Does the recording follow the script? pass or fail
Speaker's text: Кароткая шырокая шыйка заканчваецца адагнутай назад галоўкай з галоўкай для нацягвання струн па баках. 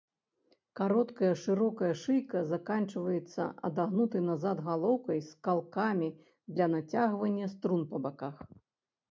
fail